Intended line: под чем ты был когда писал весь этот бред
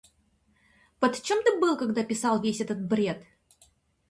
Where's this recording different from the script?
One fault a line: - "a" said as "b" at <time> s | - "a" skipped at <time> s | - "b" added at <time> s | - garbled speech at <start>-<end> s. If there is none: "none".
none